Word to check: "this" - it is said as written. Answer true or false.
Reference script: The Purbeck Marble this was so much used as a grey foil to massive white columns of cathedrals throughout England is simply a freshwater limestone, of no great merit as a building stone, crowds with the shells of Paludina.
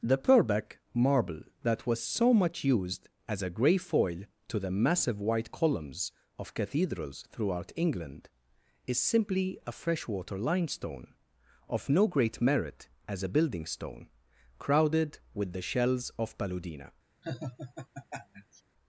false